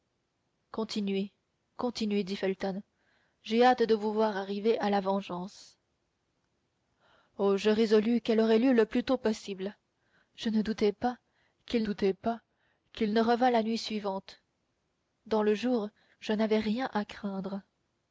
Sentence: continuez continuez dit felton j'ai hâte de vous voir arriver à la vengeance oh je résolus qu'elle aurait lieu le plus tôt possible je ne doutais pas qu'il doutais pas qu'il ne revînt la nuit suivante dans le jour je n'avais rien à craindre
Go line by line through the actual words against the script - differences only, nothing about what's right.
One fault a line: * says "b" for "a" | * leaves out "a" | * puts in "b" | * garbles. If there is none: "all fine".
all fine